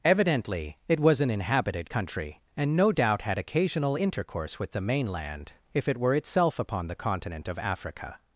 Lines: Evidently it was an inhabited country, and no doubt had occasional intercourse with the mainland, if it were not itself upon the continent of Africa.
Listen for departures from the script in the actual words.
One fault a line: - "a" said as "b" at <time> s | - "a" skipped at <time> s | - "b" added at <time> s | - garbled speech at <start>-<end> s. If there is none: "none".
- "not" skipped at 6.1 s